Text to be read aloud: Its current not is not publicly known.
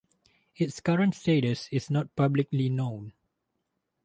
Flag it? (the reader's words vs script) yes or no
yes